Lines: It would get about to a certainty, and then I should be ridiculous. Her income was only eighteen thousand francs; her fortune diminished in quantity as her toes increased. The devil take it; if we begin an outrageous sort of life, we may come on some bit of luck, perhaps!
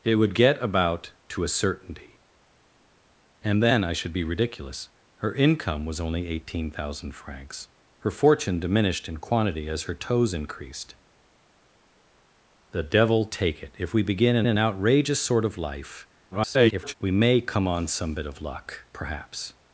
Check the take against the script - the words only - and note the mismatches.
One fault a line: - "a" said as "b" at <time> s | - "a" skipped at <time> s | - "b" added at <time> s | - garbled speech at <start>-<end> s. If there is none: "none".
- "an" added at 14.5 s
- garbled speech at 16.3-16.9 s